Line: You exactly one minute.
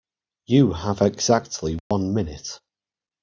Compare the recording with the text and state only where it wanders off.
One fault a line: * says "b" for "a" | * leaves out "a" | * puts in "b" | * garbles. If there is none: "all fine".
* puts in "have"